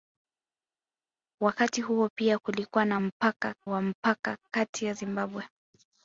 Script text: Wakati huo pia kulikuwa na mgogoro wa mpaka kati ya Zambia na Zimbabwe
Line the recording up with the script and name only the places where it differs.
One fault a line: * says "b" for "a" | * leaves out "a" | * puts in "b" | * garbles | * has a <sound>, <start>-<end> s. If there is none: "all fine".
* says "mpaka" for "mgogoro"
* leaves out "Zambia na"